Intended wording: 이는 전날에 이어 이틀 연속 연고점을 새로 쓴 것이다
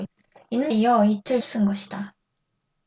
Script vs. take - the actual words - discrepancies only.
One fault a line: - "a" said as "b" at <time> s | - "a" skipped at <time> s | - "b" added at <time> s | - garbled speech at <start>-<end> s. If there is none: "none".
- "전날에" skipped at 0.7 s
- "연속 연고점을 새로" skipped at 1.4 s